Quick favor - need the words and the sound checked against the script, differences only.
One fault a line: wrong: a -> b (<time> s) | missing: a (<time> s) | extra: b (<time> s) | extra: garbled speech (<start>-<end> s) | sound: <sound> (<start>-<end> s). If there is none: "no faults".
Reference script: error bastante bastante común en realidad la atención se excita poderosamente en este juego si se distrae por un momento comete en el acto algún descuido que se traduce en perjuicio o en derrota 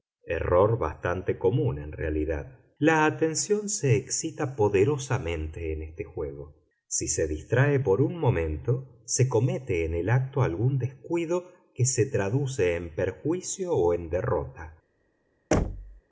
missing: bastante (1.4 s)
extra: se (9.0 s)
sound: thud (15.5-16.0 s)